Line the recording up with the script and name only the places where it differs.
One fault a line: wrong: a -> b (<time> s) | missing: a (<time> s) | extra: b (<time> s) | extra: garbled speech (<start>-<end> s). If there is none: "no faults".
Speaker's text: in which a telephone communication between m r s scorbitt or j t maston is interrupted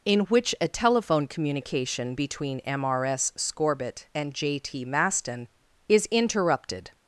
wrong: or -> and (4.1 s)